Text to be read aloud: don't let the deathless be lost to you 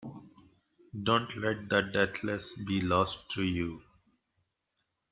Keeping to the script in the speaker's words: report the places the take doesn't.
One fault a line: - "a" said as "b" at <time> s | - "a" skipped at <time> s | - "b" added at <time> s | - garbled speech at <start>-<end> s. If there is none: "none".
none